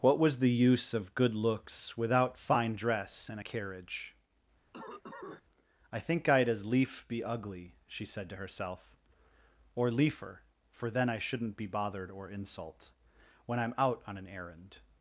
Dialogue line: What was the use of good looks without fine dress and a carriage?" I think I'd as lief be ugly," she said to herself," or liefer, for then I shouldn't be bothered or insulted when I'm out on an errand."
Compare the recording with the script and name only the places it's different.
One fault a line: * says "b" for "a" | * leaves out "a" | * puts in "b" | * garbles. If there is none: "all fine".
* says "insult" for "insulted"